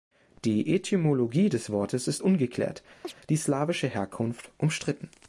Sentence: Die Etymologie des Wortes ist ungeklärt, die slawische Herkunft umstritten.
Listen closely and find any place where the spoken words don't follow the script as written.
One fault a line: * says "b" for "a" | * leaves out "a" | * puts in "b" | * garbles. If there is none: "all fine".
all fine